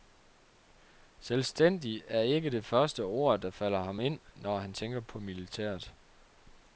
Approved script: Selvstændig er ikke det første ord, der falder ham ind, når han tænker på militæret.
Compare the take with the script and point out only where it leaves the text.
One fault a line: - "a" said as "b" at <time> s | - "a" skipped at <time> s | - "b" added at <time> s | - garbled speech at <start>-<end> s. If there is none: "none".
none